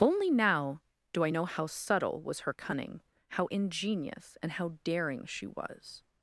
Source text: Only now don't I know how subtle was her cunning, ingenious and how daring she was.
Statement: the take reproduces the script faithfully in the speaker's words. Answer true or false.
false